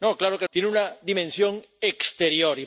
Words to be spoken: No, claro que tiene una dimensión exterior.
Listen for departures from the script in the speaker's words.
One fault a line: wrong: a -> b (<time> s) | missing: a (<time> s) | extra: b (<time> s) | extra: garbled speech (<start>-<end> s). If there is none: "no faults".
no faults